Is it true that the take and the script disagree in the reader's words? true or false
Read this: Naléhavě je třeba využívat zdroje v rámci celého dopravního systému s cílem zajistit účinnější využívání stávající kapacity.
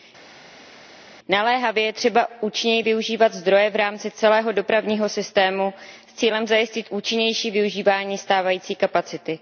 true